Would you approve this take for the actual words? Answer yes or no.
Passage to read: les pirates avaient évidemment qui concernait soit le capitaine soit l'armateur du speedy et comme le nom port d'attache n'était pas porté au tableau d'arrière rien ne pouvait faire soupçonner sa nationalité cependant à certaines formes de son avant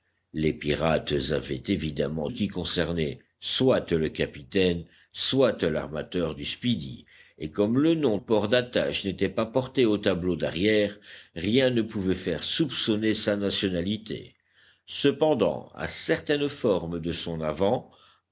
yes